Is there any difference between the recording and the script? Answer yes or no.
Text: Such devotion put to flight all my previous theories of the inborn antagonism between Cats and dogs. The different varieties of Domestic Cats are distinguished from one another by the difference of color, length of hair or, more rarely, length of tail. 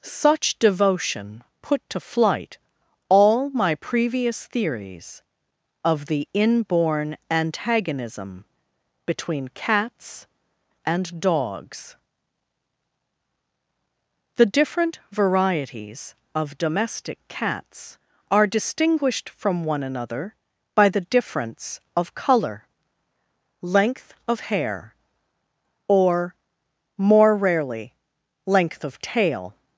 no